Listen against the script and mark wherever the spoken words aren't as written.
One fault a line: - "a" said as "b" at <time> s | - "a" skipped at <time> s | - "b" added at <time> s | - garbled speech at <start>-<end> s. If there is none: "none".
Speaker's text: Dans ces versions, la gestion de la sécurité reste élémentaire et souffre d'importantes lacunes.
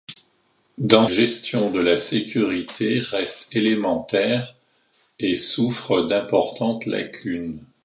- "ces versions la" skipped at 1.1 s